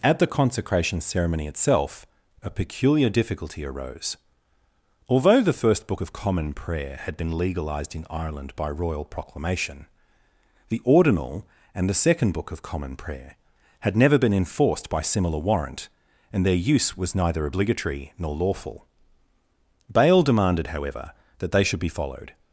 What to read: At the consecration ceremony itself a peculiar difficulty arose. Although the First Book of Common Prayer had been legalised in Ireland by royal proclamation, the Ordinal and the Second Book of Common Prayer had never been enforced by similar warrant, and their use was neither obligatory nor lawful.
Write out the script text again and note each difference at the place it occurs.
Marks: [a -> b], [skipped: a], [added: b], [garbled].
At the consecration ceremony itself a peculiar difficulty arose. Although the First Book of Common Prayer had been legalised in Ireland by royal proclamation, the Ordinal and the Second Book of Common Prayer had never been enforced by similar warrant, and their use was neither obligatory nor lawful. [added: Bale demanded however that they should be followed]